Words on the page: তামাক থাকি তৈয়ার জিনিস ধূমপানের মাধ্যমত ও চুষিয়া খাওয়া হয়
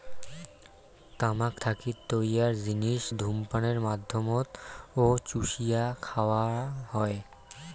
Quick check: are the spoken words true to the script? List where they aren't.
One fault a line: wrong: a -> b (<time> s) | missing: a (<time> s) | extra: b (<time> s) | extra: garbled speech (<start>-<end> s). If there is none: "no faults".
no faults